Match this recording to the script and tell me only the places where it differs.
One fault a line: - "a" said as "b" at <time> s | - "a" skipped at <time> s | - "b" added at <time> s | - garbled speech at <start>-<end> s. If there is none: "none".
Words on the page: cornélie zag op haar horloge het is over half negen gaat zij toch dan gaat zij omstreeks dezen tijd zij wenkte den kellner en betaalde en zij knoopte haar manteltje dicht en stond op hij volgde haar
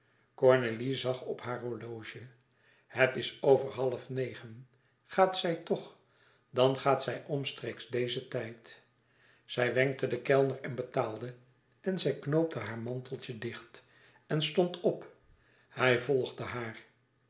none